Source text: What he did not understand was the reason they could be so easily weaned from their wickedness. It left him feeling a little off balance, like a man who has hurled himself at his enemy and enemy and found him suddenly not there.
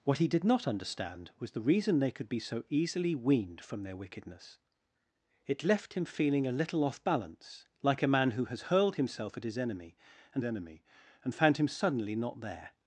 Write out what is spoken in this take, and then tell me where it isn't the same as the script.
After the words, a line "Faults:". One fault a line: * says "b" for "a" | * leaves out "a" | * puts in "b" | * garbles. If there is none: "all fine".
What he did not understand was the reason they could be so easily weaned from their wickedness. It left him feeling a little off balance, like a man who has hurled himself at his enemy and enemy and found him suddenly not there.
Faults:
all fine